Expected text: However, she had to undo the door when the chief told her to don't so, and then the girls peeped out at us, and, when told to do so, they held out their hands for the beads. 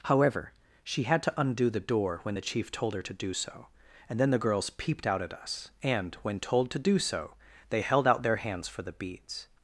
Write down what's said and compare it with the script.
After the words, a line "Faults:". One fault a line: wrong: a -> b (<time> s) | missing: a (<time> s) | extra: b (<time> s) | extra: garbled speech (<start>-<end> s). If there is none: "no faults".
However, she had to undo the door when the chief told her to do so, and then the girls peeped out at us, and, when told to do so, they held out their hands for the beads.
Faults:
wrong: don't -> do (3.1 s)